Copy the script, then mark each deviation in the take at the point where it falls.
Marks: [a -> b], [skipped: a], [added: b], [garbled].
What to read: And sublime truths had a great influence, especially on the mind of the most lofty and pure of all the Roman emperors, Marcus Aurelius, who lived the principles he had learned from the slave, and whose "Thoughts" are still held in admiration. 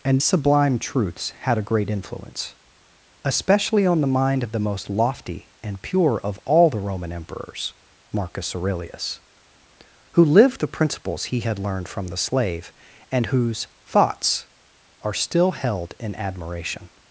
And sublime truths had a great influence, especially on the mind of the most lofty and pure of all the Roman emperors, Marcus Aurelius, who lived the principles he had learned from the slave, and whose "Thoughts" are still held in admiration.